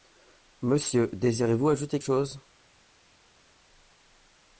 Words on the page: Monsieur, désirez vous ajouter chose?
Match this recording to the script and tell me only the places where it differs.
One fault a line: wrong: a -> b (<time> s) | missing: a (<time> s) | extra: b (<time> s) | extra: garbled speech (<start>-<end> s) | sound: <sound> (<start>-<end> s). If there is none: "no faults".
no faults